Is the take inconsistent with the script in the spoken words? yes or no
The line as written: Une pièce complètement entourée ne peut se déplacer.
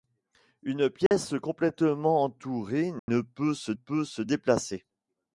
yes